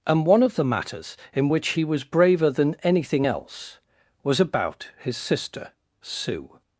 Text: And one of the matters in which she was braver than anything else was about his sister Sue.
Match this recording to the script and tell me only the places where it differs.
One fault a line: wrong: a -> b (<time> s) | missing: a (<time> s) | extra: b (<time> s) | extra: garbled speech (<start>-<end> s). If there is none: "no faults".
wrong: she -> he (1.7 s)